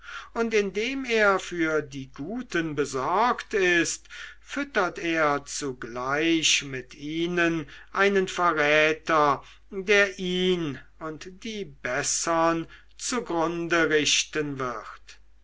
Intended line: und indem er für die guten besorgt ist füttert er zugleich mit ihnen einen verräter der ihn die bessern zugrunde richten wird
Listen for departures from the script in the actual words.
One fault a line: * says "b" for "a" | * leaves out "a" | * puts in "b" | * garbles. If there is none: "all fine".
* puts in "und"